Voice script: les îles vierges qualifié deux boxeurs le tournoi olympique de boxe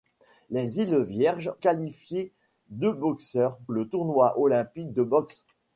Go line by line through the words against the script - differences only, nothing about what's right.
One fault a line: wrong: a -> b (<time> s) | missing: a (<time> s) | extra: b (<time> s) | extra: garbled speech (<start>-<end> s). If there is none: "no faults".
no faults